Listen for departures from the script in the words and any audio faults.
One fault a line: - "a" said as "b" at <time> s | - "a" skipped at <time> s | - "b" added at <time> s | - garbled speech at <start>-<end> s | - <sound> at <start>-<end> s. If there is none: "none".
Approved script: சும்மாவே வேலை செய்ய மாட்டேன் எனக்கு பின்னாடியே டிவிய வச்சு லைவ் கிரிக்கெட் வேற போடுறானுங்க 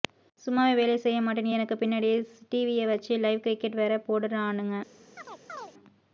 - chirp at 5.2-5.7 s